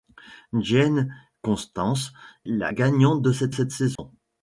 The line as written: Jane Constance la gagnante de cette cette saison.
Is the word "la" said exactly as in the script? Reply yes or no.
yes